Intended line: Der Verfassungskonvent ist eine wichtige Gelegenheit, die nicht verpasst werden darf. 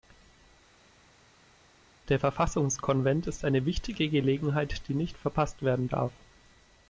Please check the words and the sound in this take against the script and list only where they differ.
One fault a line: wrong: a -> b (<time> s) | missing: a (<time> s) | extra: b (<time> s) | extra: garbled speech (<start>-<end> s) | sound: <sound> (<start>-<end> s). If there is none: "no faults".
no faults